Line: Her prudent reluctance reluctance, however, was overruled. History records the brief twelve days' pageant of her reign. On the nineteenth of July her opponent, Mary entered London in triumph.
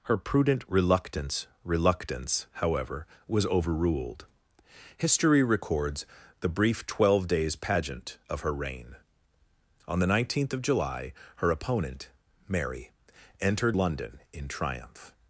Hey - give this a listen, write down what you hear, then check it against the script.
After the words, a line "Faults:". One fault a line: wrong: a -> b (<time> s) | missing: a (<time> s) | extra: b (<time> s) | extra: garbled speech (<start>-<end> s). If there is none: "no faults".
Her prudent reluctance reluctance, however, was overruled. History records the brief twelve days' pageant of her reign. On the nineteenth of July her opponent, Mary entered London in triumph.
Faults:
no faults